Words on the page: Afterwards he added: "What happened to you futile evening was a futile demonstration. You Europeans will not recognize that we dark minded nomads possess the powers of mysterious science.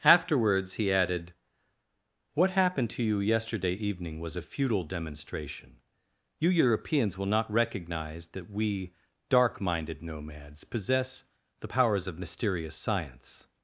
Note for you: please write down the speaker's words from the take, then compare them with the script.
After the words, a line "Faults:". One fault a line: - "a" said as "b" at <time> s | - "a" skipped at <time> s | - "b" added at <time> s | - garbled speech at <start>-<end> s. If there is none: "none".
Afterwards he added: "What happened to you yesterday evening was a futile demonstration. You Europeans will not recognize that we dark minded nomads possess the powers of mysterious science.
Faults:
- "futile" said as "yesterday" at 3.2 s